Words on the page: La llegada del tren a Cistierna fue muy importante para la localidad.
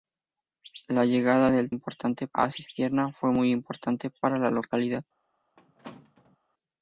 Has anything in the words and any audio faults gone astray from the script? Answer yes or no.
yes